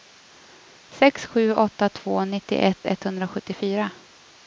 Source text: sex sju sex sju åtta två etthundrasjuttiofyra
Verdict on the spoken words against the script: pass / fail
fail